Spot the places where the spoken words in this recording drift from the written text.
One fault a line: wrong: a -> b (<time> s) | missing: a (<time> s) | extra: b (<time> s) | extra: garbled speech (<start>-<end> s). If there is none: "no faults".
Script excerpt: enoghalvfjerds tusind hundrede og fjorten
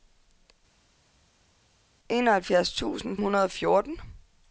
no faults